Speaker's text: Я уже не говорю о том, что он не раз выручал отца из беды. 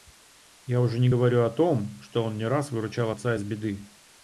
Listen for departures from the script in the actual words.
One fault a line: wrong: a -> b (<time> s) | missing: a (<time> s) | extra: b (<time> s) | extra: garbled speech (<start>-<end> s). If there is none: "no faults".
no faults